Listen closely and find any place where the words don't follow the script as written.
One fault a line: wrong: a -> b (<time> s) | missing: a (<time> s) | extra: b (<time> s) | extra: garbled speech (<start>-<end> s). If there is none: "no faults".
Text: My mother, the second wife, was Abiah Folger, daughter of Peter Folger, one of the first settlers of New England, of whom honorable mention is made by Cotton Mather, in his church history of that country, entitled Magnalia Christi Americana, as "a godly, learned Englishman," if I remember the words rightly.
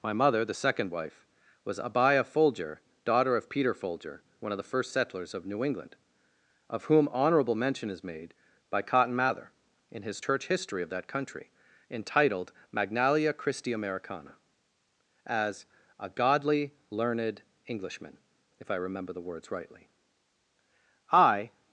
extra: I (21.1 s)